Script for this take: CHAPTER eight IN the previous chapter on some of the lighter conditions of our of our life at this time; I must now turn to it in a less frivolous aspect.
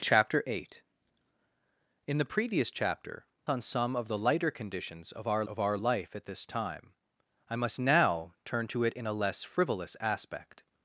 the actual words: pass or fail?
pass